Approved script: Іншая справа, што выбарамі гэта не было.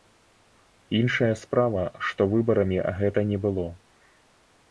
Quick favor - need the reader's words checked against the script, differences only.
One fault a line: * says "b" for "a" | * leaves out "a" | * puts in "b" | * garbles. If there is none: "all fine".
all fine